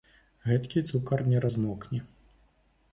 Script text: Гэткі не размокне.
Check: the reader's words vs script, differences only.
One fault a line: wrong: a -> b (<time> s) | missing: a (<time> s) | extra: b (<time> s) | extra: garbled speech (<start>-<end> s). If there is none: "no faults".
extra: цукар (0.9 s)